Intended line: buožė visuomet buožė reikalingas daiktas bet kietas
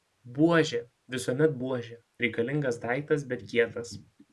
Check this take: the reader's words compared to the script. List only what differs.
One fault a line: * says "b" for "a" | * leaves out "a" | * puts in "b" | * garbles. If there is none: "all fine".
all fine